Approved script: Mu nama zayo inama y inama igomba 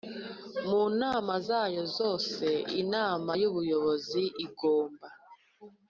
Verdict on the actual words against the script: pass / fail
fail